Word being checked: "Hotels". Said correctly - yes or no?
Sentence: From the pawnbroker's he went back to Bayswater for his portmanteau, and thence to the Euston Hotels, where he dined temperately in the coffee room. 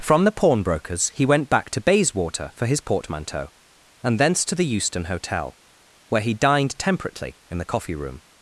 no